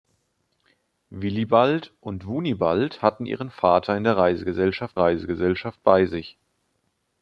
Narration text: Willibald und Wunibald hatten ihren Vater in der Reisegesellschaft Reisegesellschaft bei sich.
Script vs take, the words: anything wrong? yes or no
no